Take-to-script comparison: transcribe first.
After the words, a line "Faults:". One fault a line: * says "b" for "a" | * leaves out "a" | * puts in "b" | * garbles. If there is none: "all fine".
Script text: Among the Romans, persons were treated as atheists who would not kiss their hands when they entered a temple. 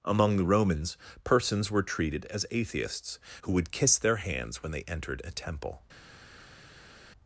Among the Romans, persons were treated as atheists who would kiss their hands when they entered a temple.
Faults:
* leaves out "not"